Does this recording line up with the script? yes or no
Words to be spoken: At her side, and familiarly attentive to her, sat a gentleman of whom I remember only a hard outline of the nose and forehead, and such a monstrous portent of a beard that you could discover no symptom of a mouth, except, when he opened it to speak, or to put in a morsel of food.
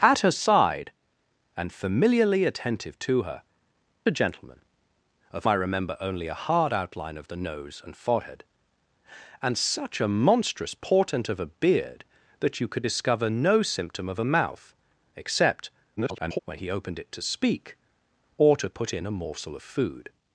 no